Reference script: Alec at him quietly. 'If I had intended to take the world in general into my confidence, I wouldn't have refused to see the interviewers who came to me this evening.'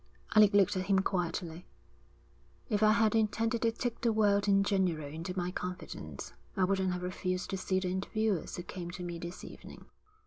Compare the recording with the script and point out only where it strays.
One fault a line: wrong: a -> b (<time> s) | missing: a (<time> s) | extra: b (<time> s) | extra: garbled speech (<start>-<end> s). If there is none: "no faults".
extra: looked (0.6 s)